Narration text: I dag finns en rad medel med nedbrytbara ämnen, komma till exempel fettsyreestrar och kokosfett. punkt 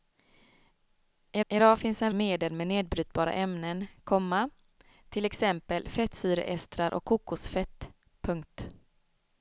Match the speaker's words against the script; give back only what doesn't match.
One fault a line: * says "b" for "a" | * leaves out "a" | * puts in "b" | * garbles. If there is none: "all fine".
* puts in "I"
* leaves out "rad"